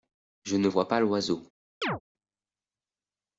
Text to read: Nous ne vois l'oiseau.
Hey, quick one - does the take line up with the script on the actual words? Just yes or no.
no